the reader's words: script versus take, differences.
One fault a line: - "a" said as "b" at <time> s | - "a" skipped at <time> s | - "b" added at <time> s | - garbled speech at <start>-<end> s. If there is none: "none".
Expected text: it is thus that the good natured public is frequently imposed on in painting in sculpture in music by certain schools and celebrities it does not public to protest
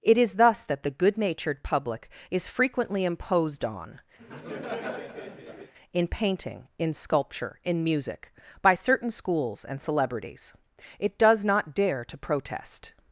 - "public" said as "dare" at 11.7 s